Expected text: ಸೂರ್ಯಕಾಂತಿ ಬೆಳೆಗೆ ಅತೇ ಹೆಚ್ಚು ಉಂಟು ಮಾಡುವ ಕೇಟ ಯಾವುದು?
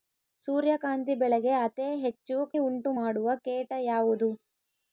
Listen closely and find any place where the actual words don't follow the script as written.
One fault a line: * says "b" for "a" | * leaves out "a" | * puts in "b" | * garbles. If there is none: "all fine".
all fine